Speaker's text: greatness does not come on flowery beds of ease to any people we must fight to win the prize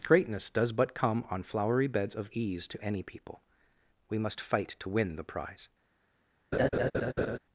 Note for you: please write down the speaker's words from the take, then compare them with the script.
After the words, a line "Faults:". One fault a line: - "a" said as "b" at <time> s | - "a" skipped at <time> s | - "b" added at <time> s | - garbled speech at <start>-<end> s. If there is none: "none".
greatness does but come on flowery beds of ease to any people we must fight to win the prize
Faults:
- "not" said as "but" at 0.7 s